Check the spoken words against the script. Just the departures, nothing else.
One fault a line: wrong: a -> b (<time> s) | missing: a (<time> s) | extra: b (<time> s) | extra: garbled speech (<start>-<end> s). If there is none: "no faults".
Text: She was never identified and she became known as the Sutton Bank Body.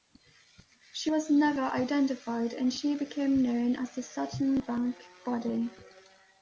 no faults